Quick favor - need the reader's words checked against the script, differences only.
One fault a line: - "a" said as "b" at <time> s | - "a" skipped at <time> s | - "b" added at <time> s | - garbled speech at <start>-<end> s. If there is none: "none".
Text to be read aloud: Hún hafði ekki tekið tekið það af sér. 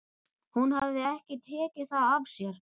- "tekið" skipped at 1.9 s